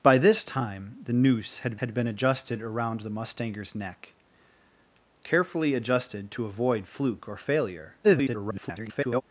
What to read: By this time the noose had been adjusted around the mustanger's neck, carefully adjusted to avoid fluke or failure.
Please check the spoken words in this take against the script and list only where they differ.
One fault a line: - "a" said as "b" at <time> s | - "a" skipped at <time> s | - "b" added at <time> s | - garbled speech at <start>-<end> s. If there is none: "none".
- "had" added at 1.8 s
- garbled speech at 8.0-9.2 s